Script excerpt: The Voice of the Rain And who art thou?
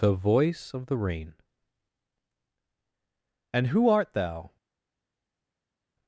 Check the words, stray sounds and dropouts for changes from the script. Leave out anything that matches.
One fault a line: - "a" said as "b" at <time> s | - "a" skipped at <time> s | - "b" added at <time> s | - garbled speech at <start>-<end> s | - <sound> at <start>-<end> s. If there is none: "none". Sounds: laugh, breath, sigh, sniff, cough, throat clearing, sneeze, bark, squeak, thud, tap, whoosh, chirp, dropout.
none